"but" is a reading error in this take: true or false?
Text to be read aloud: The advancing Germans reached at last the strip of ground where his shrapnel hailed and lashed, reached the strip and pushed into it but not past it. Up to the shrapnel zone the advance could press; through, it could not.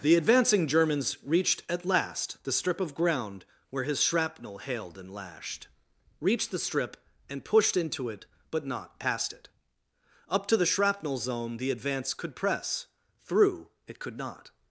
false